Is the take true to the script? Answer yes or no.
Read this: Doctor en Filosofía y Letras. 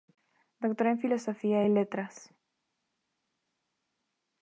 yes